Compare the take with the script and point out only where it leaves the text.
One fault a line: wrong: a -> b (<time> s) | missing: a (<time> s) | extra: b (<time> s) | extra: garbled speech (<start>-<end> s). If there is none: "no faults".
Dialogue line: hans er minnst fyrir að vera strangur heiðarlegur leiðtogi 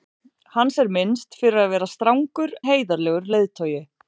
no faults